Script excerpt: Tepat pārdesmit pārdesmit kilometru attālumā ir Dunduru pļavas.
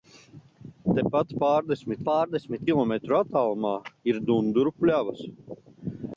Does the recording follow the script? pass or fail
pass